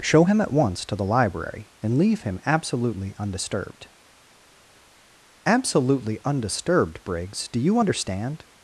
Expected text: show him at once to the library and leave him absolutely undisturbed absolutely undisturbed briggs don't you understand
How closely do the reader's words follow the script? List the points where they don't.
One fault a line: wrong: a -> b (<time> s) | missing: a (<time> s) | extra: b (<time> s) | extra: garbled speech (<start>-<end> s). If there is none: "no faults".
wrong: don't -> do (7.5 s)